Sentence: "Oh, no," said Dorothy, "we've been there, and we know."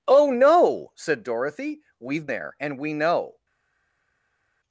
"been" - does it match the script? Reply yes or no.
no